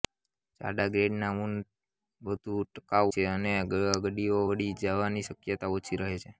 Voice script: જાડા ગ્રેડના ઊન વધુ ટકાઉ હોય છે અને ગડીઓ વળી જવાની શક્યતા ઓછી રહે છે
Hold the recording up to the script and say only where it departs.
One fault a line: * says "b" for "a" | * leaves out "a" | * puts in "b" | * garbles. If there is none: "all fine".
* leaves out "હોય"